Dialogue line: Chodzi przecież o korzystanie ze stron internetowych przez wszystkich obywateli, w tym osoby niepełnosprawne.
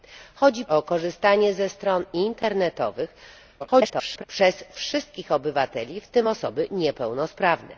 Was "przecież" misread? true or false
true